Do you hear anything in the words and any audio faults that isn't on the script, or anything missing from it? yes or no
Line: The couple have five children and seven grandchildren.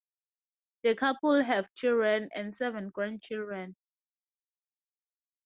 yes